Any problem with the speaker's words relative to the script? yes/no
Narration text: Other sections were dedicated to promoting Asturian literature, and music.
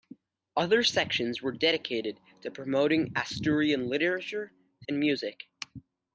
no